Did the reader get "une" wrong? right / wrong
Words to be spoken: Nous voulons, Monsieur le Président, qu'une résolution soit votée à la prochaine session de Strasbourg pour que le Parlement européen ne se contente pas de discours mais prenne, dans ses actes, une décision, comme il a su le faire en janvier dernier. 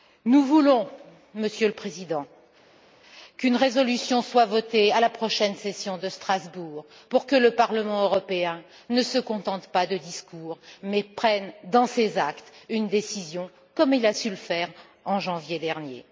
right